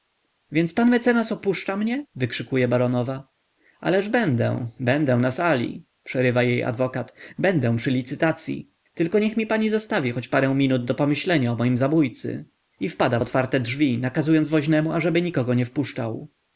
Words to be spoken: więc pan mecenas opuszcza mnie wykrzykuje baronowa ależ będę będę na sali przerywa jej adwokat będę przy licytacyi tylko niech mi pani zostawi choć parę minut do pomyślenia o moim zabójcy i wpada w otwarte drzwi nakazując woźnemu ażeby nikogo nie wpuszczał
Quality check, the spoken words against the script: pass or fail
pass